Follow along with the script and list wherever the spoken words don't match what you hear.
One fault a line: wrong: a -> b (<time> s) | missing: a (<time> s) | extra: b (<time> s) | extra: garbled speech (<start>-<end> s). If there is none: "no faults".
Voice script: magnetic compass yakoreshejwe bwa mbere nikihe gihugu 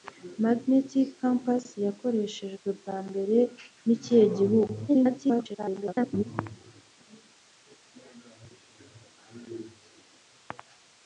extra: garbled speech (4.9-6.2 s)